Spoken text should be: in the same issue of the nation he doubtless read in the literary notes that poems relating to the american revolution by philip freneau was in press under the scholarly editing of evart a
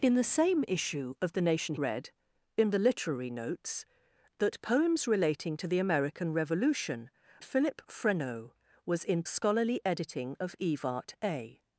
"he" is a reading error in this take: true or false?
true